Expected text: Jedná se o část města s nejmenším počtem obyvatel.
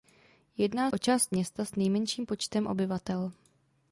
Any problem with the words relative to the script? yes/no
yes